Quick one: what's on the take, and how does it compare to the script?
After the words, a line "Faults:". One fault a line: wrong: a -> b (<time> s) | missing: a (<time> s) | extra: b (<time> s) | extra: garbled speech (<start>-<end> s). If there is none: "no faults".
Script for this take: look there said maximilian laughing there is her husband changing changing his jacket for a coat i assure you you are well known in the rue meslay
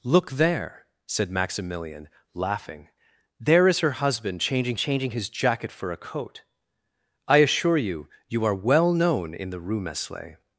look there said maximilian laughing there is her husband changing changing his jacket for a coat i assure you you are well known in the rue meslay
Faults:
no faults